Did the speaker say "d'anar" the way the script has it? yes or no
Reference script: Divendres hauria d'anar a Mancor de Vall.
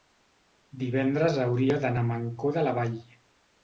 yes